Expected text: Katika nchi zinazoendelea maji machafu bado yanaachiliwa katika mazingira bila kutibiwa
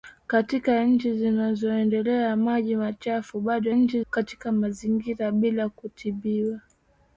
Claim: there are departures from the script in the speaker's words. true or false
true